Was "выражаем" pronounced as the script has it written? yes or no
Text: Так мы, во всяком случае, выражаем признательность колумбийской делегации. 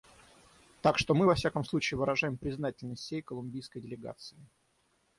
yes